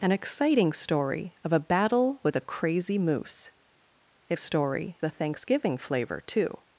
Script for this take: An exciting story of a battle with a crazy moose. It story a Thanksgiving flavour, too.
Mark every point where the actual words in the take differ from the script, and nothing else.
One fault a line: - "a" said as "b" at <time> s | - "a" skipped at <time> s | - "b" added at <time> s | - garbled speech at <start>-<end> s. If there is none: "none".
none